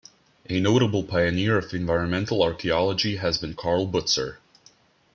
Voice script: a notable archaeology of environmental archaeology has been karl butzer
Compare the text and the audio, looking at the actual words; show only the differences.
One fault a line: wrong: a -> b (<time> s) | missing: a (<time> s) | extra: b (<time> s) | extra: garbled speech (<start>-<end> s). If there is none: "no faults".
wrong: archaeology -> pioneer (1.0 s)